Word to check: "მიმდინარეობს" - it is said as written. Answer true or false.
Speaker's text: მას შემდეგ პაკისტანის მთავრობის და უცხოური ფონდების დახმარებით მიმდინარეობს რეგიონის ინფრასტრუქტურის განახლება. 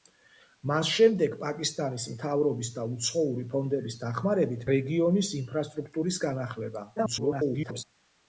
false